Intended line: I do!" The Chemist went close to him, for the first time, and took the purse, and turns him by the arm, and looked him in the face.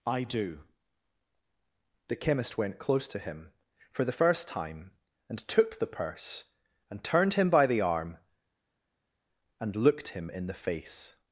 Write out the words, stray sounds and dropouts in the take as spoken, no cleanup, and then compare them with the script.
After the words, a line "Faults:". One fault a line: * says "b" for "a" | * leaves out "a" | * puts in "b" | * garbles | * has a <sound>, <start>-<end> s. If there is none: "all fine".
I do!" The Chemist went close to him, for the first time, and took the purse, and turned him by the arm, and looked him in the face.
Faults:
* says "turned" for "turns"